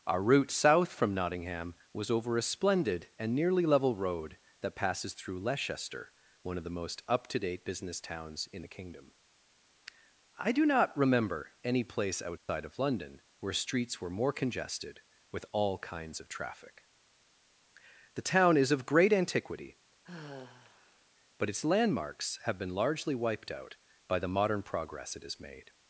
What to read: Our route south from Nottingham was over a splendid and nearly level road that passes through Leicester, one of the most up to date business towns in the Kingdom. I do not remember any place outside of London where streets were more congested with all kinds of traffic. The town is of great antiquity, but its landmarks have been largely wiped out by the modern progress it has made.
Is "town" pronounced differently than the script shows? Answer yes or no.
no